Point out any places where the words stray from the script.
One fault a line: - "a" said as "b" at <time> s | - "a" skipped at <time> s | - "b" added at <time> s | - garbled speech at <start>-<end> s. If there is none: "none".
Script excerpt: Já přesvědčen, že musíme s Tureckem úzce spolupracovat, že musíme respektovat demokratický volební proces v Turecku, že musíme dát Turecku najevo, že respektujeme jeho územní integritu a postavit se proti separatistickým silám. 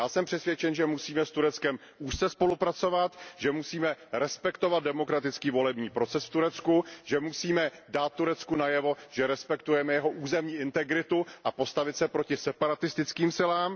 - "jsem" added at 0.1 s